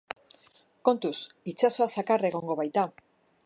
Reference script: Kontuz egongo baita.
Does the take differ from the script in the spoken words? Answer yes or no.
yes